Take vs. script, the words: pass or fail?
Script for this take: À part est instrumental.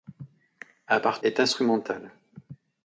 pass